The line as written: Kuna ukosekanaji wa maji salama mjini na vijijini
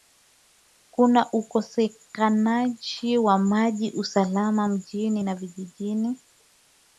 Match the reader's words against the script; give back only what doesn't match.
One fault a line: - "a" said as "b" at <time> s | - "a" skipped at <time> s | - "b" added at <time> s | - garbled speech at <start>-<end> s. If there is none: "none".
none